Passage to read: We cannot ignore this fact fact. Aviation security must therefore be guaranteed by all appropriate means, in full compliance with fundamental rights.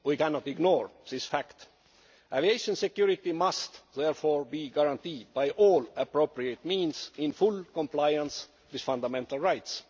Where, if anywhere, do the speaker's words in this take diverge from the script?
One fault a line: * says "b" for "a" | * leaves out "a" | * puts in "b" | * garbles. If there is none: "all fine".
* leaves out "fact"